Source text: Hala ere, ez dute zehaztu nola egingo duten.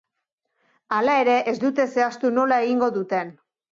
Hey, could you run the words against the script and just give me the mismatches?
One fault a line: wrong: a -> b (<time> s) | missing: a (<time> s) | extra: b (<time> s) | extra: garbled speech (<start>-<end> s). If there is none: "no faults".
no faults